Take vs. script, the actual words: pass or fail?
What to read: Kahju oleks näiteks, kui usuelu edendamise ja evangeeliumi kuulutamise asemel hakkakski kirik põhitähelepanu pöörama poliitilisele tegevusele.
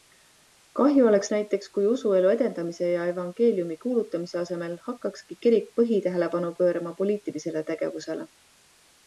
pass